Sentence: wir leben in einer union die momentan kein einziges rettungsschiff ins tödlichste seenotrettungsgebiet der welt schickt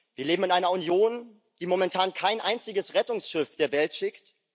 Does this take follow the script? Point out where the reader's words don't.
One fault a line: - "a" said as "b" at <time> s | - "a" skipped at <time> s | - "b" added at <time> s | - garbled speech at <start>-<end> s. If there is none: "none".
- "ins tödlichste seenotrettungsgebiet" skipped at 3.5 s